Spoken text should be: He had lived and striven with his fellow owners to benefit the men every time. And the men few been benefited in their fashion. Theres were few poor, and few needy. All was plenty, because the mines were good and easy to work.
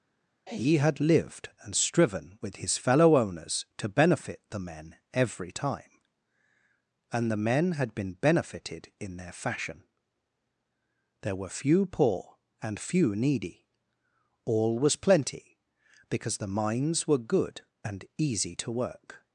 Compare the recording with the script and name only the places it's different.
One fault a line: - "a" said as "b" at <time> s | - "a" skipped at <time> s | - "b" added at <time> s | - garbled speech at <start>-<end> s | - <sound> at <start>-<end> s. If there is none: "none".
- "few" said as "had" at 7.7 s
- "Theres" said as "There" at 11.2 s